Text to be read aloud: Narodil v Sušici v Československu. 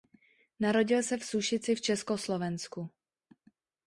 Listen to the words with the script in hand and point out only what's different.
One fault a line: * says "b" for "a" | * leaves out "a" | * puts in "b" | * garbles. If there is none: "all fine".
* puts in "se"